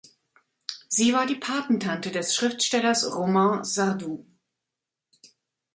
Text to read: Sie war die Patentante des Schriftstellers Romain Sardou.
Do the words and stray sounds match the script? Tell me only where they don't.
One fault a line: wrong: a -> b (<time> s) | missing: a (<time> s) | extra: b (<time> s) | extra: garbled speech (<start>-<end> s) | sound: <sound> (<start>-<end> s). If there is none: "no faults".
no faults